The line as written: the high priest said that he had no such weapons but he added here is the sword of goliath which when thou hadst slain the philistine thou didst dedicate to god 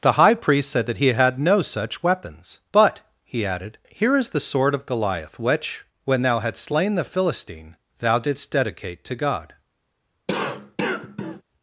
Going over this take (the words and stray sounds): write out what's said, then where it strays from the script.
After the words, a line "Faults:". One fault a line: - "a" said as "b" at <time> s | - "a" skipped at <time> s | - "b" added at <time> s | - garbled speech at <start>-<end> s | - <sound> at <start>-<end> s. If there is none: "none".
the high priest said that he had no such weapons but he added here is the sword of goliath which when thou hadst slain the philistine thou didst dedicate to god
Faults:
- cough at 10.3-11.4 s